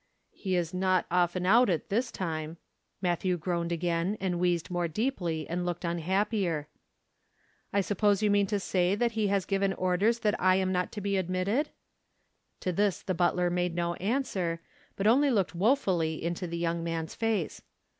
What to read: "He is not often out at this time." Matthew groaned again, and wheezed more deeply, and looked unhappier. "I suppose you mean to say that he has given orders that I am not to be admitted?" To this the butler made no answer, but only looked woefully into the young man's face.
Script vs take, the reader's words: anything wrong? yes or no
no